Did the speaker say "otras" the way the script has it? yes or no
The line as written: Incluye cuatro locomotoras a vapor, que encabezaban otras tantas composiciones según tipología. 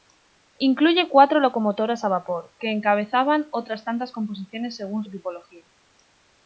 yes